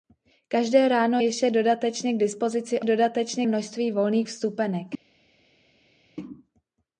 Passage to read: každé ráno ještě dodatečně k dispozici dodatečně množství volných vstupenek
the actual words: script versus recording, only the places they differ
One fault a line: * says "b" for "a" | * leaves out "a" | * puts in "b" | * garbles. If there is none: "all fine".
all fine